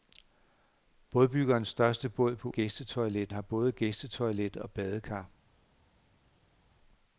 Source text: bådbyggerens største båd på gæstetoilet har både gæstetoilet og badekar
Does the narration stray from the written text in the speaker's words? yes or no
no